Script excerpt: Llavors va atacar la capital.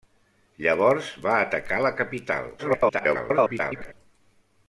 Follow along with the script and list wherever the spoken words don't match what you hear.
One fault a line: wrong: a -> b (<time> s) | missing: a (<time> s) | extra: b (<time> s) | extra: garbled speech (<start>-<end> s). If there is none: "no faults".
extra: garbled speech (2.6-3.9 s)